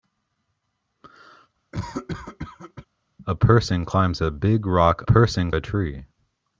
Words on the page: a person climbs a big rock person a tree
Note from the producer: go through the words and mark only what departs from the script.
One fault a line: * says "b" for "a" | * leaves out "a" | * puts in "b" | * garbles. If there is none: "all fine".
all fine